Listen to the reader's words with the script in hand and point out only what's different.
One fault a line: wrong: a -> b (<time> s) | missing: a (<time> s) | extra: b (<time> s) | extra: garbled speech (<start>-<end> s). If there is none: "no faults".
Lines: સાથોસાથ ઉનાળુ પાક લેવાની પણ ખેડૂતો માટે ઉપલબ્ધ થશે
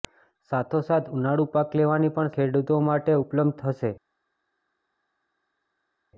no faults